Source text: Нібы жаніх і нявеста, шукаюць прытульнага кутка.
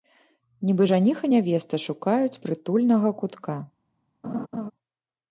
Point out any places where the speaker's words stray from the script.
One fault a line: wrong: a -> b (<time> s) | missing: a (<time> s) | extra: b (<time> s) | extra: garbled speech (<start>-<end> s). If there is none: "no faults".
no faults